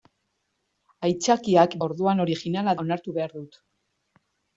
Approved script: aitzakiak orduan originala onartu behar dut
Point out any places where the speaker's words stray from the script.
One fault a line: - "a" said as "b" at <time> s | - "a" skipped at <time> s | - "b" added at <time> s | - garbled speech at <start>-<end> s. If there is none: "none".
none